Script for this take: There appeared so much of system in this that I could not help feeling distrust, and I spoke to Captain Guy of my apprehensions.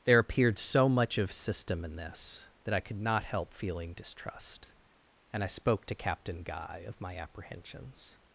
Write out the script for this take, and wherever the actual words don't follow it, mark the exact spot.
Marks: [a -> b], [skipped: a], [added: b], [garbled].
There appeared so much of system in this that I could not help feeling distrust, and I spoke to Captain Guy of my apprehensions.